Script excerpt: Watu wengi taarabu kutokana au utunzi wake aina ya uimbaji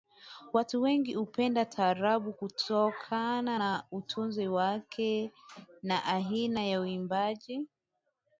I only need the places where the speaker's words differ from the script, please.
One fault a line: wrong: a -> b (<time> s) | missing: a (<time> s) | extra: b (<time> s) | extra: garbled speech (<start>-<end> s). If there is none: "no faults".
extra: hupenda (1.1 s)
wrong: au -> na (3.6 s)
extra: na (5.8 s)